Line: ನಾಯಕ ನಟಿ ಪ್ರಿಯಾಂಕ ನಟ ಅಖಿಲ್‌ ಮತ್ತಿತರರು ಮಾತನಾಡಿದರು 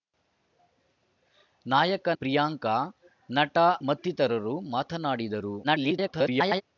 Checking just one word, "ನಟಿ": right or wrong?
wrong